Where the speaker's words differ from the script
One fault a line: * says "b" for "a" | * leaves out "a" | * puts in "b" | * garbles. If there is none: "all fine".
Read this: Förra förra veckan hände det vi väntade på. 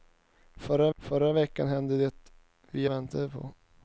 all fine